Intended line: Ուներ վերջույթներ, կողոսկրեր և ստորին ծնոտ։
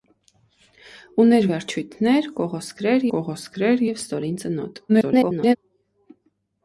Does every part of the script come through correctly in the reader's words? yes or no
no